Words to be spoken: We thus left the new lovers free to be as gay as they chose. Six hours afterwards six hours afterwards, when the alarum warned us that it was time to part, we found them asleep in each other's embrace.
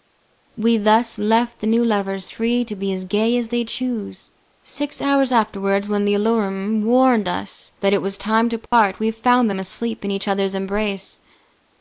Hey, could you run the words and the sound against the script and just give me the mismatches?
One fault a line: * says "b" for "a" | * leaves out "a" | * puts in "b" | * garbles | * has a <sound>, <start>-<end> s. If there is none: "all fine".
* leaves out "six hours afterwards"
* has a dropout, 8.7-8.7 s